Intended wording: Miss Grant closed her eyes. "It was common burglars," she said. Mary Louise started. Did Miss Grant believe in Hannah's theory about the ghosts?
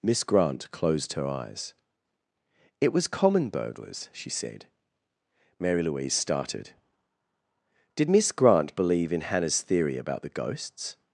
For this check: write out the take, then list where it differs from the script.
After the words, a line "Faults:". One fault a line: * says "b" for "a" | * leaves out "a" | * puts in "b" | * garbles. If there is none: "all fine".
Miss Grant closed her eyes. "It was common burglars," she said. Mary Louise started. Did Miss Grant believe in Hannah's theory about the ghosts?
Faults:
all fine